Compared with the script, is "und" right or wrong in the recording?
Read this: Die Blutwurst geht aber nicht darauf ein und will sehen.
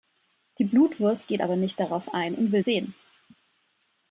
right